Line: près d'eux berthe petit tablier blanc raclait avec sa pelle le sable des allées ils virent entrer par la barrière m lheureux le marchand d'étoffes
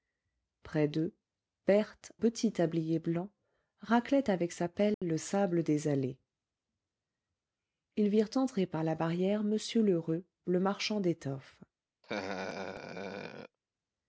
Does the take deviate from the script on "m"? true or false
false